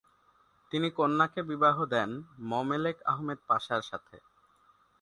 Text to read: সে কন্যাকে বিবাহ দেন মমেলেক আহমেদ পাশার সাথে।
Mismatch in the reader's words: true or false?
true